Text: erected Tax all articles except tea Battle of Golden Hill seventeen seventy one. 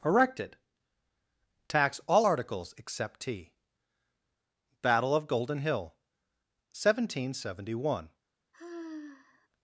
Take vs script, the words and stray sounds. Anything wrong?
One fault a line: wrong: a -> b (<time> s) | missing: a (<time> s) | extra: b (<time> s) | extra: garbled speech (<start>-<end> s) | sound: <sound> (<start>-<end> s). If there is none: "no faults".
sound: sigh (8.5-9.5 s)